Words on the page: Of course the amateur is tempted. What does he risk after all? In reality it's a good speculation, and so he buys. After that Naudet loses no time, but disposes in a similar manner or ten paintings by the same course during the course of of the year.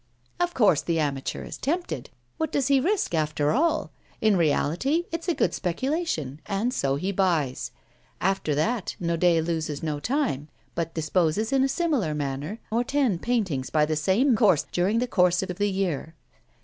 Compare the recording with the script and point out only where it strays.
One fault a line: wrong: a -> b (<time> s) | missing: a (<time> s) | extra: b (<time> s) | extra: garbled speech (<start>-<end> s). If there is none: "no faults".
no faults